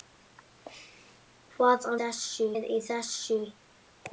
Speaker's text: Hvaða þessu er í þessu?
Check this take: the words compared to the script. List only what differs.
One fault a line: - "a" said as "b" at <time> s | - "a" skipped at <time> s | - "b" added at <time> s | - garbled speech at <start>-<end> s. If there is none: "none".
none